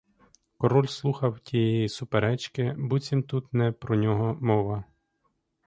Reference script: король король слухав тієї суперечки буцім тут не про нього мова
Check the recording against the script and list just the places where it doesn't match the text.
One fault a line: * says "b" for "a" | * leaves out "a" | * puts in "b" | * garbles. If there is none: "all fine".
* leaves out "король"